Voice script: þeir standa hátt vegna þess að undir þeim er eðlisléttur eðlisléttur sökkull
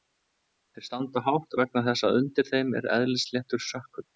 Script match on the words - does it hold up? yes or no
no